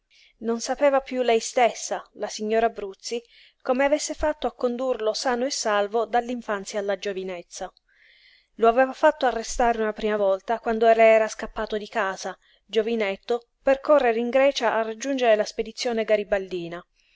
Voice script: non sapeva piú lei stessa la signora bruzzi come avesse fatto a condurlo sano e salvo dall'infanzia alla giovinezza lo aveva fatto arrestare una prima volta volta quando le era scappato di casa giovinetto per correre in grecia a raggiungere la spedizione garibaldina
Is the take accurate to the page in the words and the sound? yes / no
no